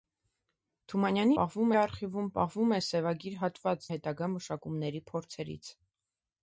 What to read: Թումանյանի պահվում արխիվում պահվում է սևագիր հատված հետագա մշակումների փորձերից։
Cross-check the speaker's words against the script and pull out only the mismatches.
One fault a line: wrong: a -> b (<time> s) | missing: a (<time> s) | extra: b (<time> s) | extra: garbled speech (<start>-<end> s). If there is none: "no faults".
no faults